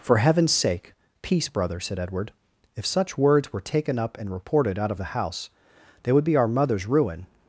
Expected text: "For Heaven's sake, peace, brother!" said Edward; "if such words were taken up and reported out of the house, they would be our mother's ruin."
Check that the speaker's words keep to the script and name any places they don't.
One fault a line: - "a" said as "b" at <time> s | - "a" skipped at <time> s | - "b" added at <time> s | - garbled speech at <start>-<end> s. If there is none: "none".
none